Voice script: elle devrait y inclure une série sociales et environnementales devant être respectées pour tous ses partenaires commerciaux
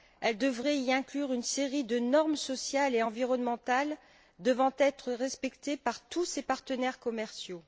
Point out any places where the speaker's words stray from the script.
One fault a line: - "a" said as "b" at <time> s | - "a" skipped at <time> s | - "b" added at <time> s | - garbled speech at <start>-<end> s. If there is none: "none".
- "de normes" added at 1.8 s
- "pour" said as "par" at 5.8 s